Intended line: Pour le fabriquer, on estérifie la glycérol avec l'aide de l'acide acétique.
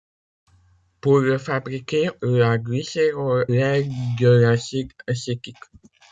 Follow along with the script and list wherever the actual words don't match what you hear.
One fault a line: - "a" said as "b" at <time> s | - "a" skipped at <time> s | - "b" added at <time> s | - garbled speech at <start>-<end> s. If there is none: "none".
- "on estérifie" skipped at 2.1 s
- "avec" skipped at 3.5 s